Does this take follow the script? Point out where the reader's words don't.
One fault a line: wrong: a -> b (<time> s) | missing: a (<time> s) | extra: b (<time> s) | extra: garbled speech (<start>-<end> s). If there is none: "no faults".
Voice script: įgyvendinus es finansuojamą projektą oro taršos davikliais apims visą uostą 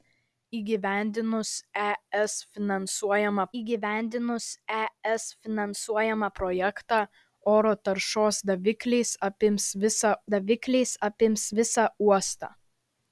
extra: įgyvendinus es finansuojamą (3.6 s)
extra: davikliais apims visą (10.3 s)